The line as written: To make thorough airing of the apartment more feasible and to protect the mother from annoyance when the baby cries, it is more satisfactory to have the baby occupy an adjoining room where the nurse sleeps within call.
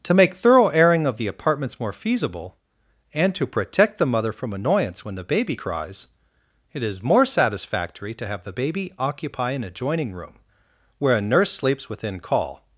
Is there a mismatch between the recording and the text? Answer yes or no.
yes